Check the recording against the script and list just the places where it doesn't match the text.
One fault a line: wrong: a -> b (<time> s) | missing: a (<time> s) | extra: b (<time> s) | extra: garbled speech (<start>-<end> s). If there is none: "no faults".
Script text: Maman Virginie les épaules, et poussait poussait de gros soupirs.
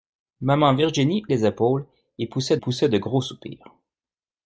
no faults